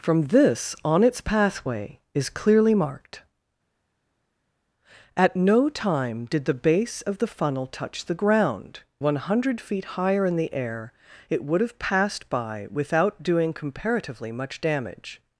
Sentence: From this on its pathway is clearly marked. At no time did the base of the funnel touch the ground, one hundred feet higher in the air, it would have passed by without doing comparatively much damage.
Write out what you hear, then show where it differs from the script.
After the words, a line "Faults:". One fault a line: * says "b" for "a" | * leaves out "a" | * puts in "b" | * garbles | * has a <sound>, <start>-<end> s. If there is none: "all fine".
From this on its pathway is clearly marked. At no time did the base of the funnel touch the ground, one hundred feet higher in the air, it would have passed by without doing comparatively much damage.
Faults:
all fine